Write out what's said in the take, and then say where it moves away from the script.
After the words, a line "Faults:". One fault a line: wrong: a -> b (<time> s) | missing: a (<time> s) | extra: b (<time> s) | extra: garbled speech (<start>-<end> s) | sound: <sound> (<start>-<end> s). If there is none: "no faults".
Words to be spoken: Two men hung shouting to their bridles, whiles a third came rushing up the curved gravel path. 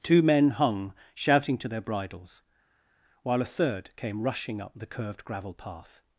Two men hung shouting to their bridles, while a third came rushing up the curved gravel path.
Faults:
wrong: whiles -> while (3.2 s)